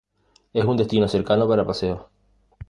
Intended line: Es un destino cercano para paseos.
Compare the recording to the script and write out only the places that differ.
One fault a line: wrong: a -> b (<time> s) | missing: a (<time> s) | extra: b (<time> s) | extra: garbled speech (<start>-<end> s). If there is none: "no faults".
no faults